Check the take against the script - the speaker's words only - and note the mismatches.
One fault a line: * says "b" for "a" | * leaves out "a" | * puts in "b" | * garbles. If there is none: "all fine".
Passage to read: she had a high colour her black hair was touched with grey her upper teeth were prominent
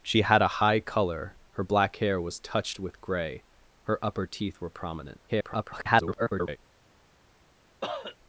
* garbles